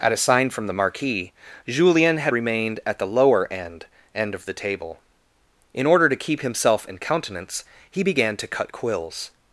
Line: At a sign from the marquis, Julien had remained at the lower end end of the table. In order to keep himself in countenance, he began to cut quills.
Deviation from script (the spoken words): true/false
false